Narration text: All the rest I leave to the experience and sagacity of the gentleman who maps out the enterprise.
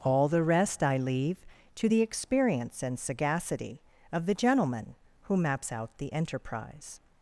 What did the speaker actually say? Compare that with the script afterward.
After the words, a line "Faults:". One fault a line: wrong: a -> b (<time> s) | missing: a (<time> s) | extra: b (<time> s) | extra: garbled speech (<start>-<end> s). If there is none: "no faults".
All the rest I leave to the experience and sagacity of the gentleman who maps out the enterprise.
Faults:
no faults